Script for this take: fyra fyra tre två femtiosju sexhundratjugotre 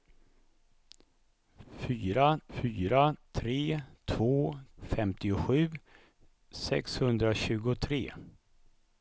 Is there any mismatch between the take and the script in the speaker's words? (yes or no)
no